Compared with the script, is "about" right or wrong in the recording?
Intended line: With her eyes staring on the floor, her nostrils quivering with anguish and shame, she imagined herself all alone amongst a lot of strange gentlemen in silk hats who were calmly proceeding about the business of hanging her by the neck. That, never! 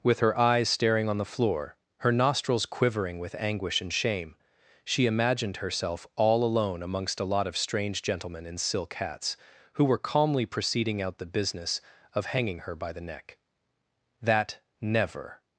wrong